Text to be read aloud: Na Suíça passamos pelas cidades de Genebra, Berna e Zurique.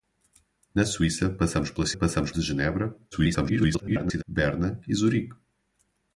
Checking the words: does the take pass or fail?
fail